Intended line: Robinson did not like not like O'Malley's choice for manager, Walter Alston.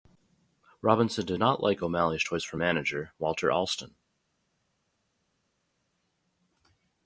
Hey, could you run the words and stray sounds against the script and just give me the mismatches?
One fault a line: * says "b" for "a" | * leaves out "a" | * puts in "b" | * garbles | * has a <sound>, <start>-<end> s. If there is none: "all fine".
* leaves out "not like"